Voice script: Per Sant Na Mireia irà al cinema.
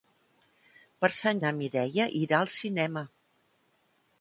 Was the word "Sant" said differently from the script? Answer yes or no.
no